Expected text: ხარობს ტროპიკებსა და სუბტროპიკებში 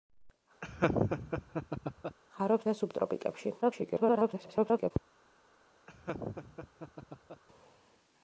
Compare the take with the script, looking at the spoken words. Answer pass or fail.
fail